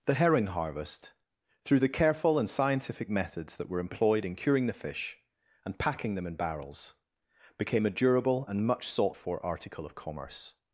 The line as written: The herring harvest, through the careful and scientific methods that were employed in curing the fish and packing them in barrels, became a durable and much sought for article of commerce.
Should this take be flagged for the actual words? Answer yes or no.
no